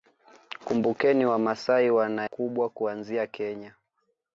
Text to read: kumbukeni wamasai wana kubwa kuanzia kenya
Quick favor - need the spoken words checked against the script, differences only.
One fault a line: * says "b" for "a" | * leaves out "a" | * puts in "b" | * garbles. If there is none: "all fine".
all fine